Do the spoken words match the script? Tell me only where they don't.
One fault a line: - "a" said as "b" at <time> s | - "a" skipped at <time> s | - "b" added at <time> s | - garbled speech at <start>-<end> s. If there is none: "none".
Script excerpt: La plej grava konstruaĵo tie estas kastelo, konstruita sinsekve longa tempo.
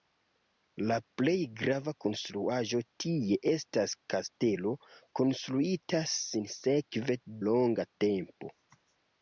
none